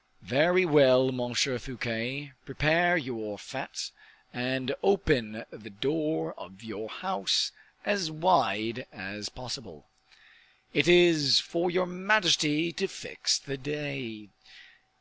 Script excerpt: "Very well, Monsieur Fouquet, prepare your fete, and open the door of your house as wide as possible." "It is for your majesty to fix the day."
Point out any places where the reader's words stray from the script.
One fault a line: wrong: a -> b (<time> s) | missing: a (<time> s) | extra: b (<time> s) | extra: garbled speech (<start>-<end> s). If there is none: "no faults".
no faults